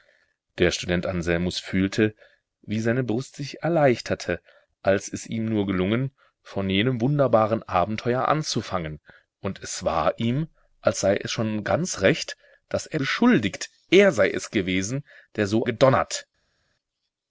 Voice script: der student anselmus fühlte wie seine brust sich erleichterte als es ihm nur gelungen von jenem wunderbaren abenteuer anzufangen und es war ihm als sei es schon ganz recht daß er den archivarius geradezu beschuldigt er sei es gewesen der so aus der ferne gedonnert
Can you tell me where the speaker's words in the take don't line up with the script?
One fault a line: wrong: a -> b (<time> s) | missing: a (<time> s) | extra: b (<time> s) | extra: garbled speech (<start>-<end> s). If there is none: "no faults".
missing: den archivarius geradezu (13.0 s)
missing: aus der ferne (15.6 s)